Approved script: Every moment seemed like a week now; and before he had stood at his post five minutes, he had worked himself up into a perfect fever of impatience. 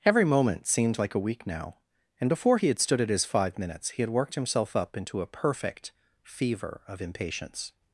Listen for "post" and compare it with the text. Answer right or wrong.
wrong